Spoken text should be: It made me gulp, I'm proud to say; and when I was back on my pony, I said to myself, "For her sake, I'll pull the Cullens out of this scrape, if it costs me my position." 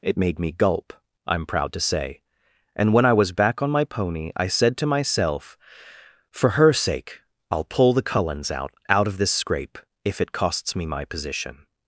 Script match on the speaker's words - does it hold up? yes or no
no